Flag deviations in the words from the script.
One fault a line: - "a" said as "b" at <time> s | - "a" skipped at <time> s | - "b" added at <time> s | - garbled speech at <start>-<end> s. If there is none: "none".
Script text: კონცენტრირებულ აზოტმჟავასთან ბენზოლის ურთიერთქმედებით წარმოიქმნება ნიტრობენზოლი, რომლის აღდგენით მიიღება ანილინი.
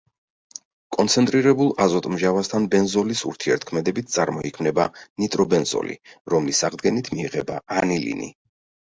none